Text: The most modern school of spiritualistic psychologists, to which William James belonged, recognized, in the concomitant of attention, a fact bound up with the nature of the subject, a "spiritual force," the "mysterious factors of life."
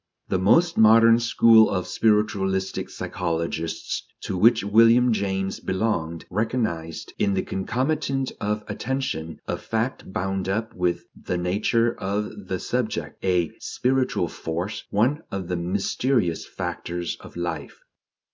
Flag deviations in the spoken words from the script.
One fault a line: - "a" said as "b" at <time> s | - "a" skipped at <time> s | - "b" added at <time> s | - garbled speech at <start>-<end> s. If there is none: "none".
- "one of" added at 14.9 s